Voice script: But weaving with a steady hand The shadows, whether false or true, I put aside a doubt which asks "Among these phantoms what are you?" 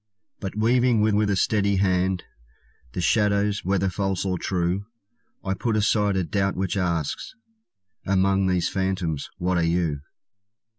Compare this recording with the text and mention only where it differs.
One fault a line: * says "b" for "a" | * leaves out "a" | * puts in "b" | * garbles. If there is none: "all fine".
* puts in "with"